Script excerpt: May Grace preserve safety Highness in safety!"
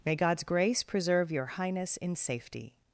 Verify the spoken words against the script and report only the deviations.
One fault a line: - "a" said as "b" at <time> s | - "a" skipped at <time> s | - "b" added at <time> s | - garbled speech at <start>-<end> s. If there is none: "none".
- "God's" added at 0.1 s
- "safety" said as "your" at 1.3 s